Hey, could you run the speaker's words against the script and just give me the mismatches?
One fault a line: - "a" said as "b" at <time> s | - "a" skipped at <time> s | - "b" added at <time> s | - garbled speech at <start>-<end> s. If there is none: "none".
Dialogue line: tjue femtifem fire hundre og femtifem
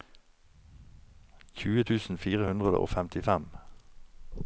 - "femtifem" said as "tusen" at 1.9 s